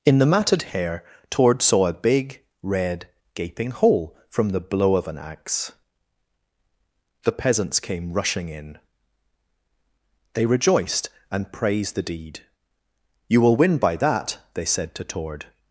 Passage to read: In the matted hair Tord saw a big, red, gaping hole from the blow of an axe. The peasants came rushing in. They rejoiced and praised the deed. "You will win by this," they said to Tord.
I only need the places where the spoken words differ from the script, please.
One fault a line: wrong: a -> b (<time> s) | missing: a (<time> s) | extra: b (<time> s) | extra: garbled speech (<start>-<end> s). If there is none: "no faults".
wrong: this -> that (14.0 s)